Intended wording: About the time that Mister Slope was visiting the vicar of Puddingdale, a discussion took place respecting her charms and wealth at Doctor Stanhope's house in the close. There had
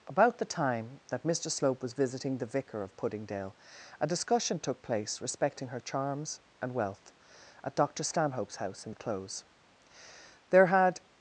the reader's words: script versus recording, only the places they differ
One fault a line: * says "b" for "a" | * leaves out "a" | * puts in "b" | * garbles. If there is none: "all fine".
all fine